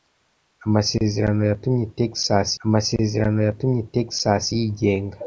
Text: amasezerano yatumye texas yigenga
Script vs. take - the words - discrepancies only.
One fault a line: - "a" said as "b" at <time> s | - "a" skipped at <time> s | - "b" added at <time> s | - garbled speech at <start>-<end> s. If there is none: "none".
- "amasezerano yatumye texas" added at 2.6 s